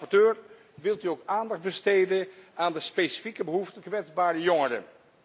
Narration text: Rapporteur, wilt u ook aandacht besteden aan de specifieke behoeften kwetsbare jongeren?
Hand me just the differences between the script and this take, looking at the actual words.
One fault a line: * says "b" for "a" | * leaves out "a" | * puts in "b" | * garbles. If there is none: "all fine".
all fine